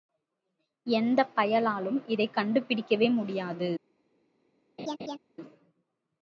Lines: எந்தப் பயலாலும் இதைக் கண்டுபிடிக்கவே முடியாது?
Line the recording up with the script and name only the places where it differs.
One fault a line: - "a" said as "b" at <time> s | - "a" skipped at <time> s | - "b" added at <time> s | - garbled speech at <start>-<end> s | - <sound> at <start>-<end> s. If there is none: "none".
- laugh at 4.8-5.2 s